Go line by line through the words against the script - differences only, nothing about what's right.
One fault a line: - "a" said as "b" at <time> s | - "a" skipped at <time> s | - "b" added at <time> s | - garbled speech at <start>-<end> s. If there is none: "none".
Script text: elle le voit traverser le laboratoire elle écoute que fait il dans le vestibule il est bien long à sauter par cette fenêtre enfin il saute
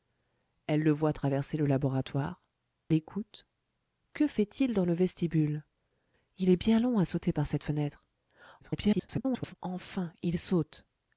- "elle" skipped at 2.4 s
- garbled speech at 8.6-9.5 s